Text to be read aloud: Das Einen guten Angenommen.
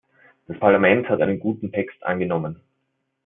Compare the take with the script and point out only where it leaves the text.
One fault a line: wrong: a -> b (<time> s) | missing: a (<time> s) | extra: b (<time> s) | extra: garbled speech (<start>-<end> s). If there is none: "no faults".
extra: Parlament hat (0.6 s)
extra: Text (1.7 s)